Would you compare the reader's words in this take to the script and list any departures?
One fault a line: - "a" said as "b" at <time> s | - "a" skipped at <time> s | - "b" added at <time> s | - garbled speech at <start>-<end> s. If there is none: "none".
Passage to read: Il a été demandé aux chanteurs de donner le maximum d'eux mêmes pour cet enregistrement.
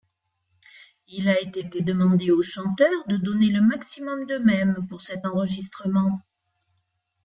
- "été" added at 1.6 s